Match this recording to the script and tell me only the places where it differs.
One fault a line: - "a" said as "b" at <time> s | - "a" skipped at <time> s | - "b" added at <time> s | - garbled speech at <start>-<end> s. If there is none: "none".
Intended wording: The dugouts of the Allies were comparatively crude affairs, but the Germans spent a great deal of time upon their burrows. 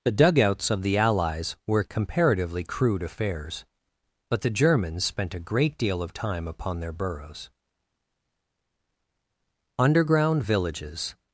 - "UNDERGROUND VILLAGES" added at 9.8 s